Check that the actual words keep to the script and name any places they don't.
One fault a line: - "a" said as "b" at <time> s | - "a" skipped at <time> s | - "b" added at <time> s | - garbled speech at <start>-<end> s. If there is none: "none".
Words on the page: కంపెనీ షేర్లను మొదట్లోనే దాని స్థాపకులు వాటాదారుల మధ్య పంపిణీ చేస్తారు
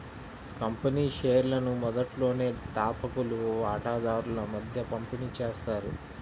- "దాని" skipped at 2.5 s